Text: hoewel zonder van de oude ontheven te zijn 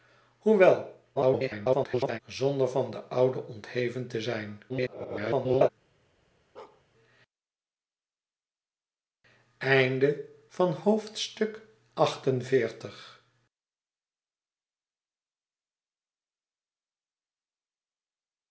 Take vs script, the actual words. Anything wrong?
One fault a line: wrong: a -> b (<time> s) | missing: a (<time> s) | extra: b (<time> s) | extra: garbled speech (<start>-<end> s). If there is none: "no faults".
extra: garbled speech (1.2-2.2 s)
extra: garbled speech (4.7-5.7 s)